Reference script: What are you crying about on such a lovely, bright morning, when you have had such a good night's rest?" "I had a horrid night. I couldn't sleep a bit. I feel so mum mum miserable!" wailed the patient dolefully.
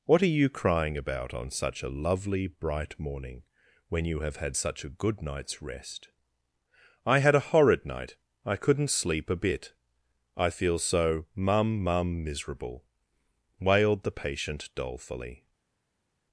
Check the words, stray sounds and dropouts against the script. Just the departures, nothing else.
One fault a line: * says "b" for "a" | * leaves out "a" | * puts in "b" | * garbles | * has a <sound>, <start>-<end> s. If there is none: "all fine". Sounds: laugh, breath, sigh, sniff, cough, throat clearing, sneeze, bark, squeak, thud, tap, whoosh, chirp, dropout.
all fine